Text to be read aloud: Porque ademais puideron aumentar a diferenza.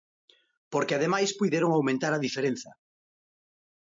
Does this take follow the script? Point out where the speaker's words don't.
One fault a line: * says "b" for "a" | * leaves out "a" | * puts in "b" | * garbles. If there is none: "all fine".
all fine